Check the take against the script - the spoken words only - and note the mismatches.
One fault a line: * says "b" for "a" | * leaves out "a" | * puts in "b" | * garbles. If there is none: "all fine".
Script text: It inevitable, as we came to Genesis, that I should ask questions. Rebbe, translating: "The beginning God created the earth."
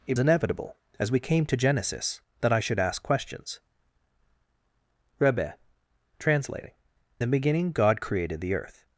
all fine